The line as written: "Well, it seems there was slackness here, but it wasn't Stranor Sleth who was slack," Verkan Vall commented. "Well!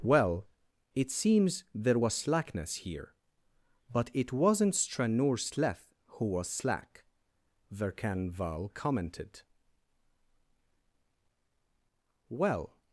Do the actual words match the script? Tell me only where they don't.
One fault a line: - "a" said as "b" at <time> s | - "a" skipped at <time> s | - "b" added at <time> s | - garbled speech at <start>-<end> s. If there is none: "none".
none